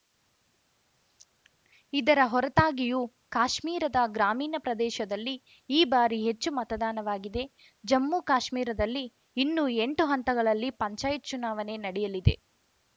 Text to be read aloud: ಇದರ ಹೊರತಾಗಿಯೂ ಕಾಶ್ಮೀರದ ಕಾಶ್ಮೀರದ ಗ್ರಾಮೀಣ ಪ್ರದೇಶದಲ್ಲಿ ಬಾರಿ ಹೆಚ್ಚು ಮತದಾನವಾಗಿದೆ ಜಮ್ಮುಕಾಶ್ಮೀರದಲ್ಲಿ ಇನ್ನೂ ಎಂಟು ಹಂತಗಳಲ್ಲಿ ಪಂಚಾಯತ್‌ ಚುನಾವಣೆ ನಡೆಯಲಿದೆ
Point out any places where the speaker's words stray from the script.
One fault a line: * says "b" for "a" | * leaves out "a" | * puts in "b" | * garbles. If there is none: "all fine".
* leaves out "ಕಾಶ್ಮೀರದ"
* puts in "ಈ"